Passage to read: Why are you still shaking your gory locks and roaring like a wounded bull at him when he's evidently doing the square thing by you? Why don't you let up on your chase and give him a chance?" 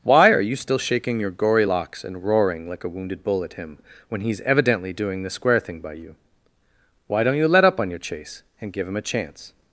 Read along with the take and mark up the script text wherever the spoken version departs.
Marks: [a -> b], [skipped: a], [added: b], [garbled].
Why are you still shaking your gory locks and roaring like a wounded bull at him when he's evidently doing the square thing by you? Why don't you let up on your chase and give him a chance?"